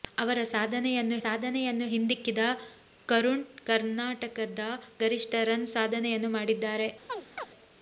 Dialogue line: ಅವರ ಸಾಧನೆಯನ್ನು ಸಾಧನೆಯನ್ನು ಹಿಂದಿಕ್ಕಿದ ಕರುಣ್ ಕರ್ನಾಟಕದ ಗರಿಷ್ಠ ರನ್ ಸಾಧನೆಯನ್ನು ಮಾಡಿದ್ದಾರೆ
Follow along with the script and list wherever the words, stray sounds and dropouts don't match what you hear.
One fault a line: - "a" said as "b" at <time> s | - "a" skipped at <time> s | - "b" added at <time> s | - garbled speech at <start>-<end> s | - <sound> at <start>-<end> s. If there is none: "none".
- chirp at 7.1-7.5 s